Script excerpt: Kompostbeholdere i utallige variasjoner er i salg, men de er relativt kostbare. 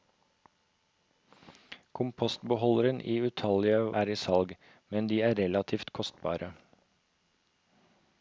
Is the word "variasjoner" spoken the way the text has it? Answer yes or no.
no